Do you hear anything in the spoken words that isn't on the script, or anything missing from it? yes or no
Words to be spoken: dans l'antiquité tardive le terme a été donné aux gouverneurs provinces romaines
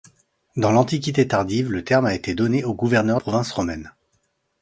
no